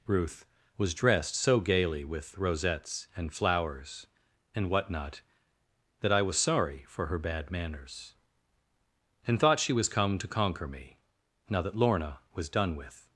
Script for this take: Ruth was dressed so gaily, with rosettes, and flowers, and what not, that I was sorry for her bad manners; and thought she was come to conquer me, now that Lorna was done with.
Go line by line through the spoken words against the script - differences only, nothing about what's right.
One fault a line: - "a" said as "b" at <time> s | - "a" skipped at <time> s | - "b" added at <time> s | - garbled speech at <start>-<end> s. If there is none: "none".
none